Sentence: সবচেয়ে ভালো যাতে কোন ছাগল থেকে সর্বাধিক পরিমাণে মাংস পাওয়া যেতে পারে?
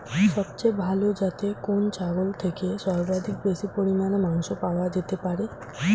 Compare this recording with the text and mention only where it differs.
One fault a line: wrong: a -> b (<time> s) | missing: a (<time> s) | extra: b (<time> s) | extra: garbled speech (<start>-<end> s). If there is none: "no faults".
extra: বেশি (3.4 s)